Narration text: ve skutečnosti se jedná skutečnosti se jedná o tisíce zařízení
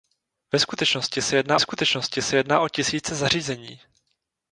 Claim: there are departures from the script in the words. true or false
false